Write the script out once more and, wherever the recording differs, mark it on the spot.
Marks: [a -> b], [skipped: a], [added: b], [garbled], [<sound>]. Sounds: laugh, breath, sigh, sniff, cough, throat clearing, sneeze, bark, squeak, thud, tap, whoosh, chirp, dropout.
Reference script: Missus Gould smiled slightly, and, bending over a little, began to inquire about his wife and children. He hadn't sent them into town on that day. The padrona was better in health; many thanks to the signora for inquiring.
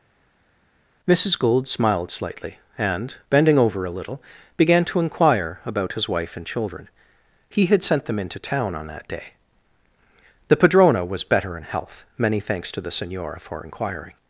Missus Gould smiled slightly, and, bending over a little, began to inquire about his wife and children. He [hadn't -> had] sent them into town on that day. The padrona was better in health; many thanks to the signora for inquiring.